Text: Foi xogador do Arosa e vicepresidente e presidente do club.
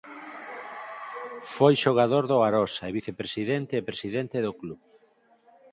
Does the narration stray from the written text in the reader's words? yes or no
no